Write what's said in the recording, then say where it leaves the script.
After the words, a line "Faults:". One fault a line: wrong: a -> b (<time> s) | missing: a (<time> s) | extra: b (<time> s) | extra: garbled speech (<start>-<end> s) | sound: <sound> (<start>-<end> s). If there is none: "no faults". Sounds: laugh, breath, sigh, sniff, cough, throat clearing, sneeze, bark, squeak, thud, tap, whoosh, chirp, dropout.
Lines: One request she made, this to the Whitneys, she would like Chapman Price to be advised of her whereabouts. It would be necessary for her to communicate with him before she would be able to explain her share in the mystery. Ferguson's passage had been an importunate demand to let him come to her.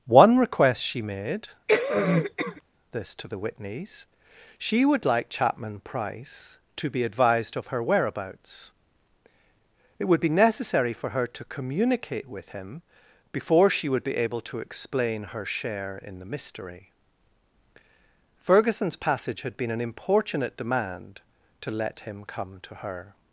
One request she made, this to the Whitneys, she would like Chapman Price to be advised of her whereabouts. It would be necessary for her to communicate with him before she would be able to explain her share in the mystery. Ferguson's passage had been an importunate demand to let him come to her.
Faults:
sound: cough (1.7-2.6 s)